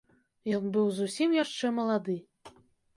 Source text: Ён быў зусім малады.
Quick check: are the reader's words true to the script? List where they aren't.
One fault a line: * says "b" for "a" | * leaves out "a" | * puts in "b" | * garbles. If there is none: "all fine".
* puts in "яшчэ"